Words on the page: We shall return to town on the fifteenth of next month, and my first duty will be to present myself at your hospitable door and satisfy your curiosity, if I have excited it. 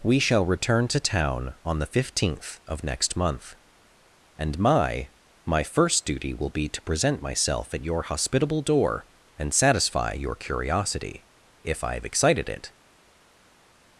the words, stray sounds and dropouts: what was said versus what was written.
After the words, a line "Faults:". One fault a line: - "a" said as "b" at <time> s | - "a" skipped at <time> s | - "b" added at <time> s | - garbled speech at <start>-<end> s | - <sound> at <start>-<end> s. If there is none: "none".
We shall return to town on the fifteenth of next month, and my my first duty will be to present myself at your hospitable door and satisfy your curiosity, if I have excited it.
Faults:
- "my" added at 5.5 s